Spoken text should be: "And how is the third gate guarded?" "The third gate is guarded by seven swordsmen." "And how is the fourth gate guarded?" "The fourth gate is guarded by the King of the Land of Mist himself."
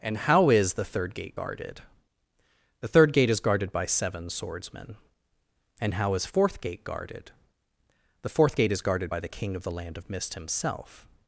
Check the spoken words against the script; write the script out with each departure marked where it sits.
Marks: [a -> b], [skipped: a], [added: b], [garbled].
"And how is the third gate guarded?" "The third gate is guarded by seven swordsmen." "And how is [skipped: the] fourth gate guarded?" "The fourth gate is guarded by the King of the Land of Mist himself."